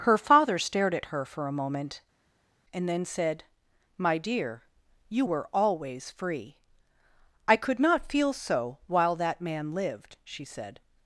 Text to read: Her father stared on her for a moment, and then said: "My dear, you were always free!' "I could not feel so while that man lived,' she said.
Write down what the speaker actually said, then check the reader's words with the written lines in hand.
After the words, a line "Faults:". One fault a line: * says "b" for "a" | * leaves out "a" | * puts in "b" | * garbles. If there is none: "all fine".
Her father stared at her for a moment, and then said: "My dear, you were always free!' "I could not feel so while that man lived,' she said.
Faults:
* says "at" for "on"